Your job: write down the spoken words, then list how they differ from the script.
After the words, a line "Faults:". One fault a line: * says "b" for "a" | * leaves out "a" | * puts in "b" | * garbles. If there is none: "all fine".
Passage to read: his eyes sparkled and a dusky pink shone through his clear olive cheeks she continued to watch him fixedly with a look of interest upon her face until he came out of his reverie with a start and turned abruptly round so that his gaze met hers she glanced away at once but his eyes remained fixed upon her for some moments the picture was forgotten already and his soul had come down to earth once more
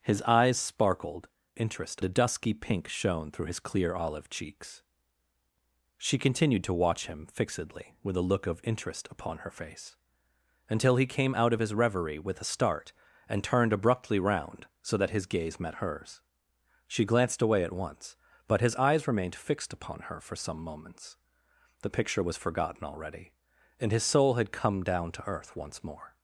his eyes sparkled interest a dusky pink shone through his clear olive cheeks she continued to watch him fixedly with a look of interest upon her face until he came out of his reverie with a start and turned abruptly round so that his gaze met hers she glanced away at once but his eyes remained fixed upon her for some moments the picture was forgotten already and his soul had come down to earth once more
Faults:
* says "interest" for "and"